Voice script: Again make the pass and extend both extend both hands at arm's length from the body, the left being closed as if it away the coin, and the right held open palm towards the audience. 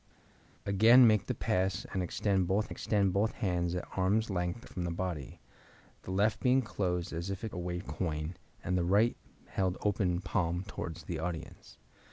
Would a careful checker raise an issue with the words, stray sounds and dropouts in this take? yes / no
no